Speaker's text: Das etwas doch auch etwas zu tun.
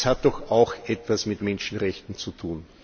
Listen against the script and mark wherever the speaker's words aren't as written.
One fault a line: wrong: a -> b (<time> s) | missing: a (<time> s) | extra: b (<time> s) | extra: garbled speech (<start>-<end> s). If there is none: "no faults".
wrong: etwas -> hat (0.1 s)
extra: mit Menschenrechten (1.3 s)